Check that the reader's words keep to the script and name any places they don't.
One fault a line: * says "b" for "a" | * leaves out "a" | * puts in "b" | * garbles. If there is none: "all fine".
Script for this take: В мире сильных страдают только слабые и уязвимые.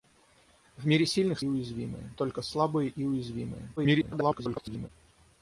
* says "уязвимые" for "страдают"
* garbles